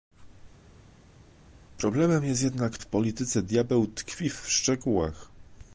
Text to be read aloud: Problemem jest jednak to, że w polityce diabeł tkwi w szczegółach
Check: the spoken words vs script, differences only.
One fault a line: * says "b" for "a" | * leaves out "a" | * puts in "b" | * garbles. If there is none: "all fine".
* leaves out "to że"